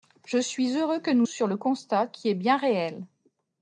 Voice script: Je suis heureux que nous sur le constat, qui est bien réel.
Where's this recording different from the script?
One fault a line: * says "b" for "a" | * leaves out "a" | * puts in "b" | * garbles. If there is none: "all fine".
all fine